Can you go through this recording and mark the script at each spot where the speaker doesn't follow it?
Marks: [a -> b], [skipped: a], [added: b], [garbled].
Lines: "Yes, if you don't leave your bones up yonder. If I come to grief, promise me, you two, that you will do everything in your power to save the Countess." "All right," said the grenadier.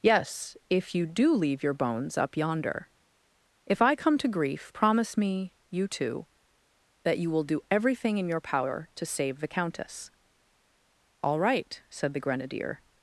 "Yes, if you [don't -> do] leave your bones up yonder. If I come to grief, promise me, you two, that you will do everything in your power to save the Countess." "All right," said the grenadier.